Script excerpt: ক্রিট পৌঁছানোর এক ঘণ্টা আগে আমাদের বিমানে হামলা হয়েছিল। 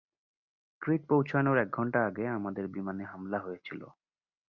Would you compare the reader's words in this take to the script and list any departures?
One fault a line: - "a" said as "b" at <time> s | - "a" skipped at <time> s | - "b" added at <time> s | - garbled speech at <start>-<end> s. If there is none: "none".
none